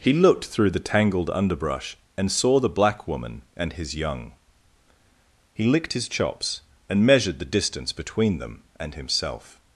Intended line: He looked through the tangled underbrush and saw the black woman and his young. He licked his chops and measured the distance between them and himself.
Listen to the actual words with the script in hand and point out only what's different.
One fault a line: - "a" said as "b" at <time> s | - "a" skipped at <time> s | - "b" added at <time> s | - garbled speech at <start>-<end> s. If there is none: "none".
none